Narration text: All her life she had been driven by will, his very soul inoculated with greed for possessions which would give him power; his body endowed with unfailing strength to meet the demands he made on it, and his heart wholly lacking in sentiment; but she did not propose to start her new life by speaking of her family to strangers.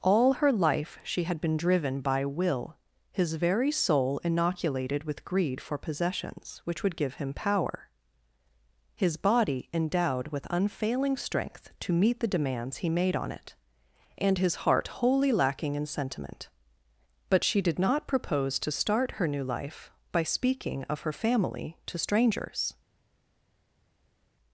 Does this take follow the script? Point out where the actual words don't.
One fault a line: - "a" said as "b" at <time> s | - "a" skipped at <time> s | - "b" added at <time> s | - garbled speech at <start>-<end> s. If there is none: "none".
none